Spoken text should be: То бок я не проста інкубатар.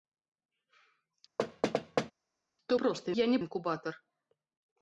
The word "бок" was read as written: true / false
false